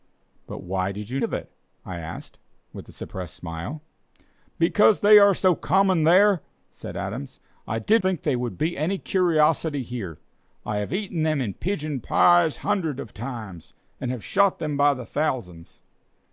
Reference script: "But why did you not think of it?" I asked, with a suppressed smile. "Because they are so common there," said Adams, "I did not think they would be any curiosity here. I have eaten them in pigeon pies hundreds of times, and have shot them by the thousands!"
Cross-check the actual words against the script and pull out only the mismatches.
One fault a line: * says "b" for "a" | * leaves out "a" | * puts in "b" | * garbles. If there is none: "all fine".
* leaves out "not think"
* leaves out "not"